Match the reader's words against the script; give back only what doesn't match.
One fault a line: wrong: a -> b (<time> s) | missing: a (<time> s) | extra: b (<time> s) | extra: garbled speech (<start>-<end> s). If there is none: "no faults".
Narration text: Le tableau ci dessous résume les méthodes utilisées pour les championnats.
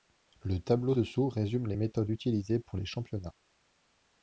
missing: ci (0.9 s)